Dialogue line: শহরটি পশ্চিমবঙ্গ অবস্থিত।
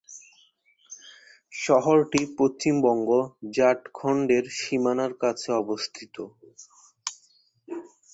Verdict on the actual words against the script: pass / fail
fail